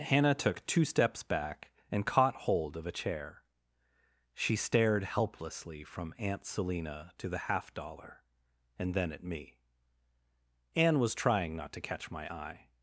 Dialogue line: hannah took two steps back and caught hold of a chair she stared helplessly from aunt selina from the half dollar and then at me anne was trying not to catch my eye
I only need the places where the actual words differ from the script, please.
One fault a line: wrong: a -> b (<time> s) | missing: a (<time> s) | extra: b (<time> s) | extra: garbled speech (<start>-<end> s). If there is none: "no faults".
wrong: from -> to (7.2 s)